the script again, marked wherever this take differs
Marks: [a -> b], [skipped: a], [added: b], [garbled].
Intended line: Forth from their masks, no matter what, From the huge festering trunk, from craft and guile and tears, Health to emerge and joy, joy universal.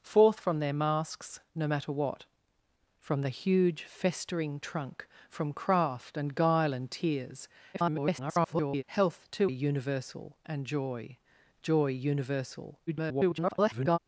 Forth from their masks, no matter what, From the huge festering trunk, from craft and guile and tears, [garbled] Health to [emerge -> universal] and joy, joy universal. [garbled]